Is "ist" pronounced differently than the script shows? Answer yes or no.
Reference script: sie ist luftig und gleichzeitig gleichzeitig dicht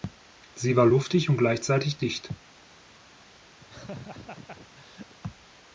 yes